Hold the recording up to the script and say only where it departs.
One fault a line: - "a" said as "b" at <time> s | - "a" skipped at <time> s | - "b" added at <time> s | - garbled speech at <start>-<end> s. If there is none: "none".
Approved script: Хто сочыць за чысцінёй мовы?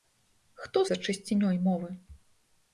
- "сочыць" skipped at 0.8 s